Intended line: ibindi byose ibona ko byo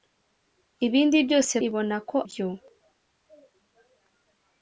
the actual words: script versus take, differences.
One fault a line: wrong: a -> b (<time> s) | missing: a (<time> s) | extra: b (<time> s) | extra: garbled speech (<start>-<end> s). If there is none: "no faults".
no faults